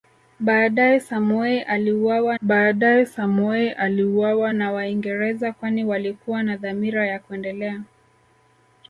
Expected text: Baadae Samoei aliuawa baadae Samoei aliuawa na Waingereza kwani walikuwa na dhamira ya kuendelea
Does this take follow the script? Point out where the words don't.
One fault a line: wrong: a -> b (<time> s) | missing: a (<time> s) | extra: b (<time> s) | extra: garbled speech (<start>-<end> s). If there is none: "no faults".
no faults